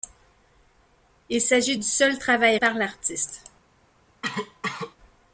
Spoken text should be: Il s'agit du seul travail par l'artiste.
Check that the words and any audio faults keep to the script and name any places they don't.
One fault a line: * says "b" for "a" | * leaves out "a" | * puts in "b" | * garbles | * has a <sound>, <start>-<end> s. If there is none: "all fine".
* has a cough, 4.2-5.0 s